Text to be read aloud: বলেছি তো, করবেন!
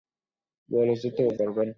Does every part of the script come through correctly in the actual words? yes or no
yes